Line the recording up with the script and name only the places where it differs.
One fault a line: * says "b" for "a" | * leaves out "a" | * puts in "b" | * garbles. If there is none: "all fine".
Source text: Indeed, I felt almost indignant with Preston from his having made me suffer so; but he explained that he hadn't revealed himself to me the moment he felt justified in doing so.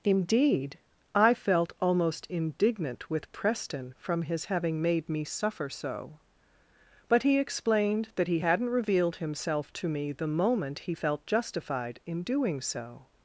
all fine